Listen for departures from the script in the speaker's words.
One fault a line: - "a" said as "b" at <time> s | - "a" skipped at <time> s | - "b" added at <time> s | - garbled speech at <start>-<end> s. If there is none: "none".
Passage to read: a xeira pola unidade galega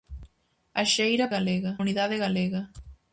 - "pola" said as "galega" at 1.4 s